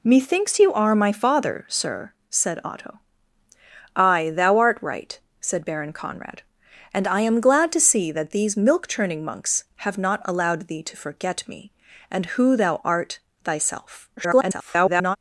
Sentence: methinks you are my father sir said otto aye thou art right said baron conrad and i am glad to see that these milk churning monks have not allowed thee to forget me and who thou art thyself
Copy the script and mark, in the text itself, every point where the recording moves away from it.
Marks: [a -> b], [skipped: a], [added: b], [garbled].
methinks you are my father sir said otto aye thou art right said baron conrad and i am glad to see that these milk churning monks have not allowed thee to forget me and who thou art thyself [garbled]